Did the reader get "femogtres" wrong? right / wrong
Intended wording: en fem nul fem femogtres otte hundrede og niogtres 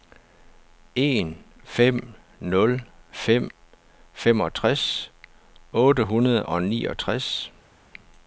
right